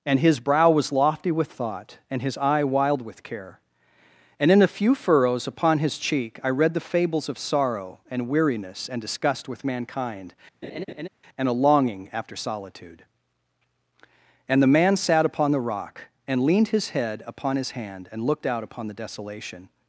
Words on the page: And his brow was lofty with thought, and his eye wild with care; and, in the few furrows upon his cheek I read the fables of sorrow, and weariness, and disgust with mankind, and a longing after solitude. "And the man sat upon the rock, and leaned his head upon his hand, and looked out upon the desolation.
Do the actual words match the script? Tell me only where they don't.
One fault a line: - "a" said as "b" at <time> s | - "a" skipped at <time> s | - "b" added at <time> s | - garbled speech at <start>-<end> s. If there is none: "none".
- "the" said as "a" at 4.6 s